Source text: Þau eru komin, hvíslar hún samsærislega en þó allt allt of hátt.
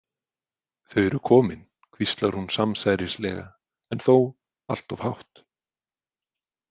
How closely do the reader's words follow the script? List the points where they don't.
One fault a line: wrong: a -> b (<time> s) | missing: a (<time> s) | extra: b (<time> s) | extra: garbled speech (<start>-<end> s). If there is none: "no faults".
missing: allt (5.0 s)